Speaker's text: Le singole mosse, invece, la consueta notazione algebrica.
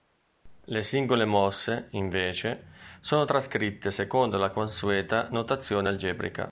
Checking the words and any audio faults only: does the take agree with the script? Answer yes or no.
no